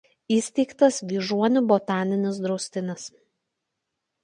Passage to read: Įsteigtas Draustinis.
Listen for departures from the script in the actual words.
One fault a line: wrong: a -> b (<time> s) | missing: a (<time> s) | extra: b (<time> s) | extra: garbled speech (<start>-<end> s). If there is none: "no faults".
extra: Vyžuonų botaninis (1.1 s)